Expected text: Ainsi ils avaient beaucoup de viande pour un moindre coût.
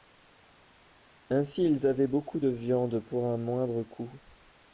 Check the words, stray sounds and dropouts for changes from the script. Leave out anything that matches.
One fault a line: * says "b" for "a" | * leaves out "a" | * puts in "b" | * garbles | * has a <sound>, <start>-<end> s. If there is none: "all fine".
all fine